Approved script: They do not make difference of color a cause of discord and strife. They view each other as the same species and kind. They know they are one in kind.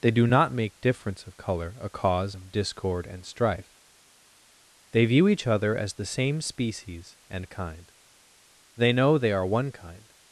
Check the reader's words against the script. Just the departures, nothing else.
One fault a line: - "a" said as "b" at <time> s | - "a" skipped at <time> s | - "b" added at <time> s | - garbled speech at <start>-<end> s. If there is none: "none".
- "in" skipped at 9.7 s